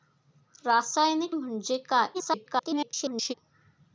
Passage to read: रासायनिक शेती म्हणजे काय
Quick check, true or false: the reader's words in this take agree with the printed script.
false